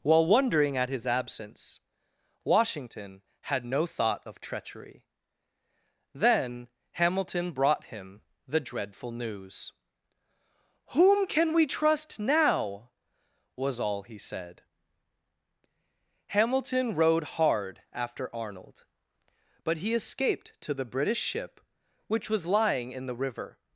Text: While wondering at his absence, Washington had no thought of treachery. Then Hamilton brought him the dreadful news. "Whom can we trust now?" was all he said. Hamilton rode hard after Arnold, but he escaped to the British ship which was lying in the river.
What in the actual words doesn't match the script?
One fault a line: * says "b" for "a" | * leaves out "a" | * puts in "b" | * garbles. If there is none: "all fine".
all fine